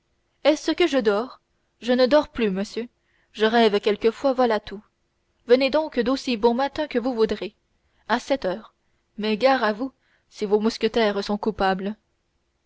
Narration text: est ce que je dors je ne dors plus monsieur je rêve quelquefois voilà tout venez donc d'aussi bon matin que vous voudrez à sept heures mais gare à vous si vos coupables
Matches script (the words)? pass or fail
fail